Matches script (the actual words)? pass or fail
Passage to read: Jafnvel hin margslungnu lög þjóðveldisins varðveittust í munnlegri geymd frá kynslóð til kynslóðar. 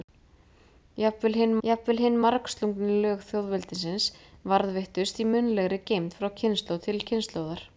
fail